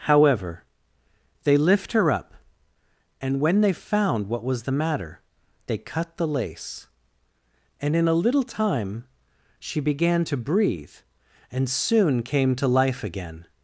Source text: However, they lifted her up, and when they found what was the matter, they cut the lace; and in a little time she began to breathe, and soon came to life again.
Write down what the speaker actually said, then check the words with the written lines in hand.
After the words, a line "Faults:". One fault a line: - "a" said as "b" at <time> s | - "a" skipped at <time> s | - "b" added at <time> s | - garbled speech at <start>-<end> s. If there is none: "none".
However, they lift her up, and when they found what was the matter, they cut the lace; and in a little time she began to breathe, and soon came to life again.
Faults:
- "lifted" said as "lift" at 1.6 s